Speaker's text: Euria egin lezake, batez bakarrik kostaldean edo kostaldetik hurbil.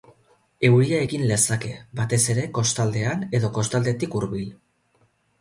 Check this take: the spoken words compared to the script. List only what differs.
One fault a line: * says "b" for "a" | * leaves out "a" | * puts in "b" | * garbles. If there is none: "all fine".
* says "ere" for "bakarrik"